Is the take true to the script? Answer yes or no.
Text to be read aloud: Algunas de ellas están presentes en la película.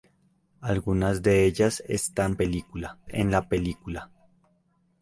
no